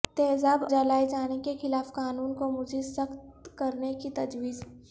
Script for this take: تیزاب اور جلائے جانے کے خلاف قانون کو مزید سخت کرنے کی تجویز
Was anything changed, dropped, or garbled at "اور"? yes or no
yes